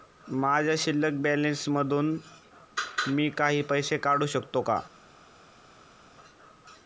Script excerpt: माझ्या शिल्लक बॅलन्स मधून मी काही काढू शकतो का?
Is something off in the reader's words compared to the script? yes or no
yes